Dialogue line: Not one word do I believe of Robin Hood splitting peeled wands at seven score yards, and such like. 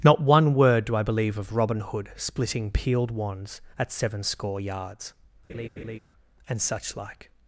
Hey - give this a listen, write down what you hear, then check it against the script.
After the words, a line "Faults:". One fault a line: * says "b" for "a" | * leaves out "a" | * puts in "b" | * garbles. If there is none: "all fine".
Not one word do I believe of Robin Hood splitting peeled wands at seven score yards, and such like.
Faults:
all fine